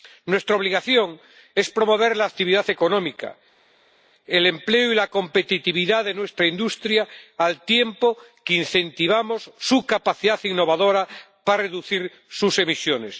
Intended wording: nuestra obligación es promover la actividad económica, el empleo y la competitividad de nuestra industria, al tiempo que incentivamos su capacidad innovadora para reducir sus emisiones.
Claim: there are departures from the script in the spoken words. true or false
false